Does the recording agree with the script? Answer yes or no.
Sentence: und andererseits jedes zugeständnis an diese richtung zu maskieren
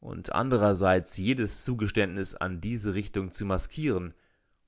yes